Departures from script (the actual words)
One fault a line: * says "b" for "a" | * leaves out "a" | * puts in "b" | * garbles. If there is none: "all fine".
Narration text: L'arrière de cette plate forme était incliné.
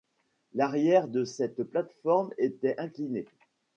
all fine